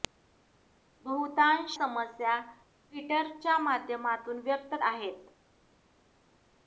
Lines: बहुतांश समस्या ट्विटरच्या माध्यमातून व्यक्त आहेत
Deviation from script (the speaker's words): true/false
false